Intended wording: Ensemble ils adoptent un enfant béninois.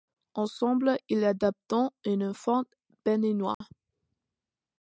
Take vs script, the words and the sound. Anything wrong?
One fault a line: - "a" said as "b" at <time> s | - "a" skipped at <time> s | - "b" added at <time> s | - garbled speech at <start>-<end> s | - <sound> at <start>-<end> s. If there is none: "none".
- dropout at 3.5-3.6 s